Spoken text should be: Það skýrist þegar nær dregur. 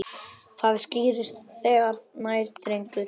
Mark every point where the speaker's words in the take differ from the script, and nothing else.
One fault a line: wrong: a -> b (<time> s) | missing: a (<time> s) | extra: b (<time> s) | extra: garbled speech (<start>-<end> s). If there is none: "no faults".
no faults